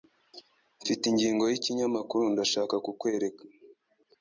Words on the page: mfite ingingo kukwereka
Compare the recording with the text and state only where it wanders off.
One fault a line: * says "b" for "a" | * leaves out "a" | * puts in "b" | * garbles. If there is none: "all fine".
* puts in "yikinyamakuru ndashaka"